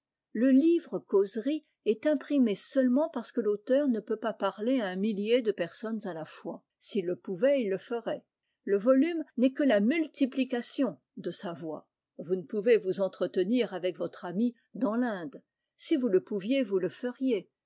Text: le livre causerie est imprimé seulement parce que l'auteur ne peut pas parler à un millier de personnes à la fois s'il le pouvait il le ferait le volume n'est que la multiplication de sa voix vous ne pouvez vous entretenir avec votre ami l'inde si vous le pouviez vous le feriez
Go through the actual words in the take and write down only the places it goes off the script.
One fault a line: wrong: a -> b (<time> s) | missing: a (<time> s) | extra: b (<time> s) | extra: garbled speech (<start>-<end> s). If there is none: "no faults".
extra: dans (14.7 s)